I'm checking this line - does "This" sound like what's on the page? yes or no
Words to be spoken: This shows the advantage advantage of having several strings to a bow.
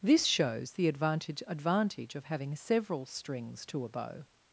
yes